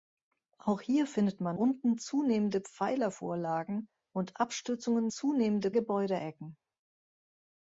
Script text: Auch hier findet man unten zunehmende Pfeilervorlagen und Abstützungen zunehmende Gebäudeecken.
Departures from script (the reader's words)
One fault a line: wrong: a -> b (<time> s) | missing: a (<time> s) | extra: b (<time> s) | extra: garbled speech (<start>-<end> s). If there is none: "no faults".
no faults